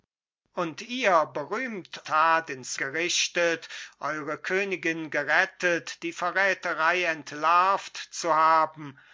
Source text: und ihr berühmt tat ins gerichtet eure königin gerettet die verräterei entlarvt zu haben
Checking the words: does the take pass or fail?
pass